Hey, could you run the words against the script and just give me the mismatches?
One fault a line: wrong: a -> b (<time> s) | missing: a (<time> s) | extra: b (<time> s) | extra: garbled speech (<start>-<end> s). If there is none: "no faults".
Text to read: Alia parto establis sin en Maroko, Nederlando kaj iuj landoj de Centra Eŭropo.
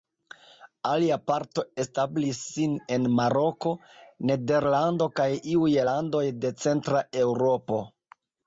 no faults